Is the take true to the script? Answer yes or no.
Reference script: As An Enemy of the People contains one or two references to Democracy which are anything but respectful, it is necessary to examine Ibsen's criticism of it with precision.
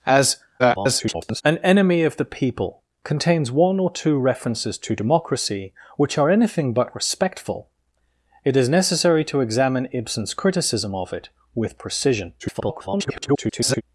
no